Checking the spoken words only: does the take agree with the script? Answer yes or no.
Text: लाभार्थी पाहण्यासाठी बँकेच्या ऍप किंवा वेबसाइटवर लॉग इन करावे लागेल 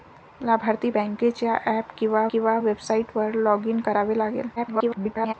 no